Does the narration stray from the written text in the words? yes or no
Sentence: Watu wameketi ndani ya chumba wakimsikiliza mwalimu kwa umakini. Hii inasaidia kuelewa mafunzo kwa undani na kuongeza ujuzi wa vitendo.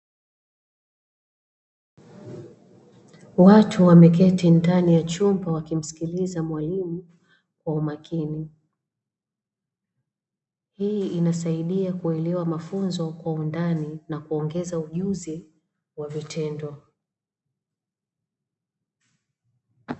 no